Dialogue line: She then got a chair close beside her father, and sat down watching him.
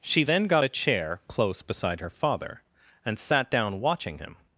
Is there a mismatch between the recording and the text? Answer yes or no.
no